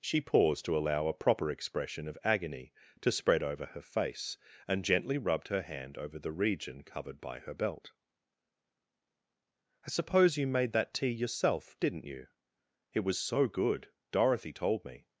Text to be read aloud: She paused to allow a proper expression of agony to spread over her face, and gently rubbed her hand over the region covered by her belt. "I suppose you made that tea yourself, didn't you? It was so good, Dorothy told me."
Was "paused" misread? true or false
false